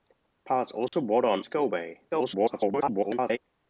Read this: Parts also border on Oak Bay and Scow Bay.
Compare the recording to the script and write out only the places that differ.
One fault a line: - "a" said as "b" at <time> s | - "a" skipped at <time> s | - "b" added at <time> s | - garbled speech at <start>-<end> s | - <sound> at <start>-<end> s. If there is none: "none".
- dropout at 0.9-0.9 s
- "Oak Bay and" skipped at 1.4 s
- garbled speech at 2.1-3.4 s